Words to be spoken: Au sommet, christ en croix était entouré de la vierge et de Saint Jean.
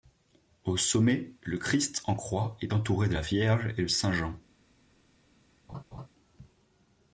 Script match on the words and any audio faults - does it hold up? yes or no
no